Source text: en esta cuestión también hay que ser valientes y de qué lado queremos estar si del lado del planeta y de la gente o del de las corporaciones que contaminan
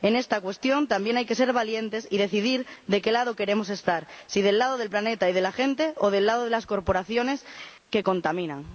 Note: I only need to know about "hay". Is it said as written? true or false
true